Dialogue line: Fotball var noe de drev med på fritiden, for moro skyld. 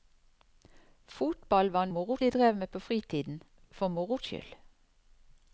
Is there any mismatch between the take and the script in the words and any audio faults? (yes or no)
yes